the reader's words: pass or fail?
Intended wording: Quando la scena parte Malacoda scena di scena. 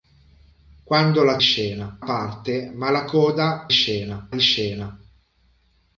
pass